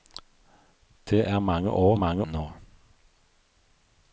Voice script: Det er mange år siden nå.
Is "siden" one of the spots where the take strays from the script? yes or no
yes